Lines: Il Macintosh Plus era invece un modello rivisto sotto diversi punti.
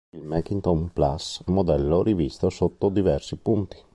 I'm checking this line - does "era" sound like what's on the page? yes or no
no